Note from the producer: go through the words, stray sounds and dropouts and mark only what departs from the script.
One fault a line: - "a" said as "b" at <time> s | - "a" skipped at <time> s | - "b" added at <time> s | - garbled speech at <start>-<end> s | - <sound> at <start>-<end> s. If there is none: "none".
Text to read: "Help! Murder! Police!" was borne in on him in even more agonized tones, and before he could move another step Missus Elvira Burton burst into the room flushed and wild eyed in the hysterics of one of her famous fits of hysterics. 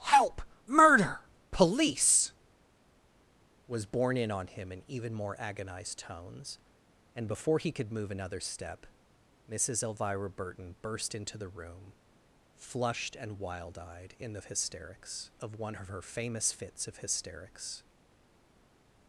none